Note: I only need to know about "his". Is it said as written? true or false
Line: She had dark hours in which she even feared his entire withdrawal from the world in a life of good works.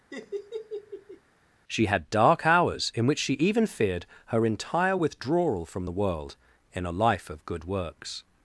false